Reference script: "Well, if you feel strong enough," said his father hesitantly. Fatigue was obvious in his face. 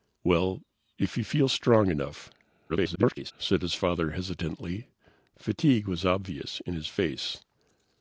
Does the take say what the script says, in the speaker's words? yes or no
no